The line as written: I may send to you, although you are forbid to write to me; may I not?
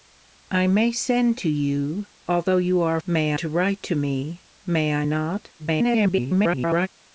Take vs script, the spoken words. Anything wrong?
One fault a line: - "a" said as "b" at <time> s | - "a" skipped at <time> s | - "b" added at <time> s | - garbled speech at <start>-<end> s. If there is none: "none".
- "forbid" said as "may" at 3.1 s
- garbled speech at 5.6-6.9 s